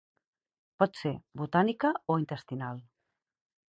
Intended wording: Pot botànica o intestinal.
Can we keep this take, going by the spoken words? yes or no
no